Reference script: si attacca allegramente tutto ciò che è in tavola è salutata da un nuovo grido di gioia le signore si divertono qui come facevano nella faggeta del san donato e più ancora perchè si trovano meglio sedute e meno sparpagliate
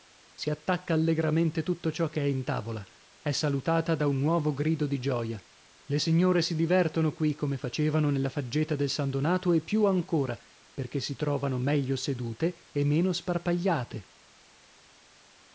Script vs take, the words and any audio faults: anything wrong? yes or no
no